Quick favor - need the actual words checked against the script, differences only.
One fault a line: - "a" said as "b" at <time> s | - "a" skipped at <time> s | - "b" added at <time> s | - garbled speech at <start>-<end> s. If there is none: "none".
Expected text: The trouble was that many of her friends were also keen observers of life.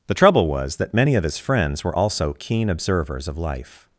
- "her" said as "his" at 1.2 s